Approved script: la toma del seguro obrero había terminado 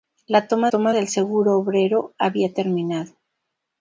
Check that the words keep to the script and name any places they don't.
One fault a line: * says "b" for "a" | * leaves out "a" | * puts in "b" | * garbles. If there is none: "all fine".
* puts in "toma"